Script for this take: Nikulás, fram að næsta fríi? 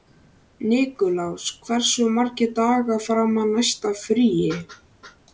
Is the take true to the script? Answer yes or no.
no